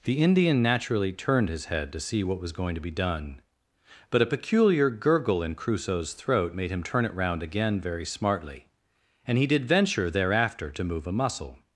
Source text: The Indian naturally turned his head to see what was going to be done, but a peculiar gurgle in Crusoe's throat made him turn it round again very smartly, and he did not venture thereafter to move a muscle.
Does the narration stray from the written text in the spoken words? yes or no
yes